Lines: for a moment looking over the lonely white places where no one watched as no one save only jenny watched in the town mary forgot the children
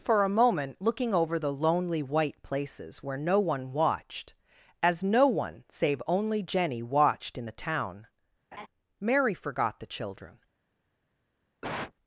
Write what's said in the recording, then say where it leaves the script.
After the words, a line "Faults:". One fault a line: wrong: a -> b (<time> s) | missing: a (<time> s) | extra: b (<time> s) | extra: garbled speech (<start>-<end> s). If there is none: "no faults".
for a moment looking over the lonely white places where no one watched as no one save only jenny watched in the town mary forgot the children
Faults:
no faults